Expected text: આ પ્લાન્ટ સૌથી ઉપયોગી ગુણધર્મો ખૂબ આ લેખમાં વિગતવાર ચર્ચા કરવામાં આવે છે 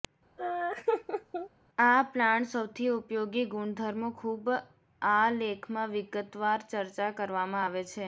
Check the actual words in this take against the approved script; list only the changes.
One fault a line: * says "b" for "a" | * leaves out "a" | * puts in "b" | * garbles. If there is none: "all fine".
all fine